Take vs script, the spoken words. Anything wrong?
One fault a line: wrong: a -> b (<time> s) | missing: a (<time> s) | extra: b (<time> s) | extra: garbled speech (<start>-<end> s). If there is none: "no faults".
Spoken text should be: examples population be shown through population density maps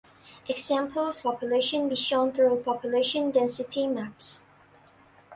no faults